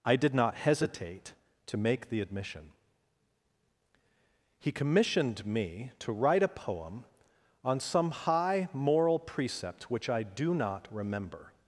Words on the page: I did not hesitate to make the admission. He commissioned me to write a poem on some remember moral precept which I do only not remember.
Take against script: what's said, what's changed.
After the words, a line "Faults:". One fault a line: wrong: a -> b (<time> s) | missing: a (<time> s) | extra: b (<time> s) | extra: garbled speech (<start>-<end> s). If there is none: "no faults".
I did not hesitate to make the admission. He commissioned me to write a poem on some high moral precept which I do not remember.
Faults:
wrong: remember -> high (8.1 s)
missing: only (10.5 s)